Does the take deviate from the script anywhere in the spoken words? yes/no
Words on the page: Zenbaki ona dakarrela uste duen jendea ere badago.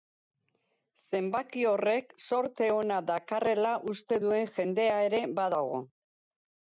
yes